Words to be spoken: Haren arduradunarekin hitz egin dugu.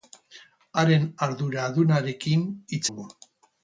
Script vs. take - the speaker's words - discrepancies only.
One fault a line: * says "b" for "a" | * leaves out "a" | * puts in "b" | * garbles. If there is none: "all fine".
* leaves out "egin"